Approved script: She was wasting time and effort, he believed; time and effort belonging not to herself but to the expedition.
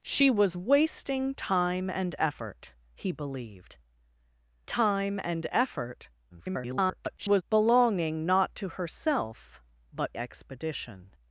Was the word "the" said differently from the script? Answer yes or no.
yes